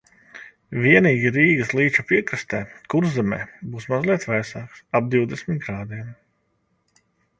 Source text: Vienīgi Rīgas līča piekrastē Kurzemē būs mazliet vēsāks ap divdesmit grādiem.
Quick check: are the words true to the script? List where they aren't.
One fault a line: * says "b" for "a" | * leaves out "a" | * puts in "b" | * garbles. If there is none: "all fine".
all fine